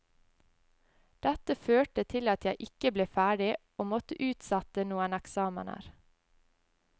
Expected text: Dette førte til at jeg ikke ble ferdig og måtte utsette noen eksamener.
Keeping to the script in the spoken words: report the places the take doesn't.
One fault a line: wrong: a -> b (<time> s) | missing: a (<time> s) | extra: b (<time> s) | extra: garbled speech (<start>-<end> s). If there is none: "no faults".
no faults